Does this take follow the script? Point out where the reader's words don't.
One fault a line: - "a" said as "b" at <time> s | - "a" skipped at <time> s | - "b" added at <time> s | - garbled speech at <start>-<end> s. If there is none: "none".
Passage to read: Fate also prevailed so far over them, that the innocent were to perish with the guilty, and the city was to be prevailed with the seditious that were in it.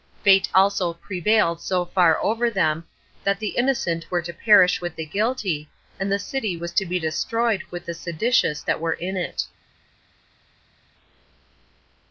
- "prevailed" said as "destroyed" at 7.0 s